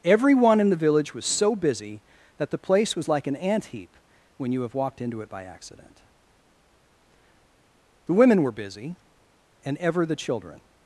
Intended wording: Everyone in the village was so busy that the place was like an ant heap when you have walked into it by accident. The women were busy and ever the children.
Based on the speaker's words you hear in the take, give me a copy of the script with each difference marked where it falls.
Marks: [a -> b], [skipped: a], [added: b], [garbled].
Everyone in the village was so busy that the place was like an ant heap when you have walked into it by accident. The women were busy and ever the children.